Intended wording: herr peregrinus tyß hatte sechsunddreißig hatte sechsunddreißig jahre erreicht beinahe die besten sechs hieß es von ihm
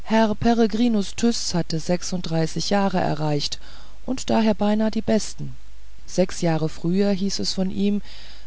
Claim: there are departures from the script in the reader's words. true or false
true